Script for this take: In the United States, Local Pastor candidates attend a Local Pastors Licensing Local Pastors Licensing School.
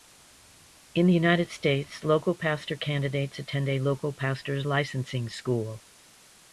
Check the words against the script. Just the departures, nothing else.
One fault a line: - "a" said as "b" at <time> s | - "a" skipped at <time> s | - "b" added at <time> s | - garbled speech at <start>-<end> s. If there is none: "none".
- "Local Pastors Licensing" skipped at 5.3 s